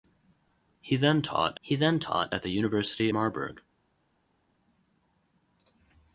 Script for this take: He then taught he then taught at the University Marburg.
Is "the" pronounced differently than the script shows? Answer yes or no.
no